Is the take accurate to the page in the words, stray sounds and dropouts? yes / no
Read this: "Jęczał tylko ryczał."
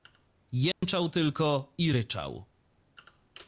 no